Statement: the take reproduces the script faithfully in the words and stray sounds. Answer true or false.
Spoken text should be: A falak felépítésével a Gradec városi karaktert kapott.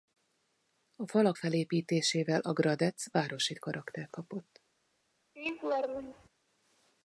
false